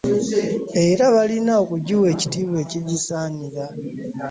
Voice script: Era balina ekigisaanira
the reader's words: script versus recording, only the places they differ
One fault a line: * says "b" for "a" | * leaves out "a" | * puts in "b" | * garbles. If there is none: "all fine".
* puts in "okugiwa ekitiibwa"